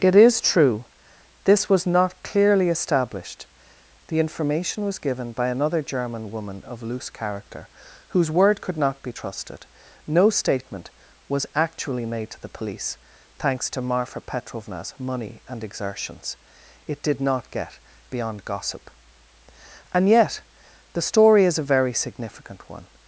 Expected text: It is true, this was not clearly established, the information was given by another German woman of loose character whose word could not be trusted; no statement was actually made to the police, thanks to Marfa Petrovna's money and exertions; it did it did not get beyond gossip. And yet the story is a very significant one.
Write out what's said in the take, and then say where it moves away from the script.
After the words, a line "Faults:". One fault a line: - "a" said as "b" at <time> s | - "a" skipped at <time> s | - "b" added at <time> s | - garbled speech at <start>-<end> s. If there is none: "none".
It is true, this was not clearly established, the information was given by another German woman of loose character whose word could not be trusted; no statement was actually made to the police, thanks to Marfa Petrovna's money and exertions; it did not get beyond gossip. And yet the story is a very significant one.
Faults:
- "it did" skipped at 17.2 s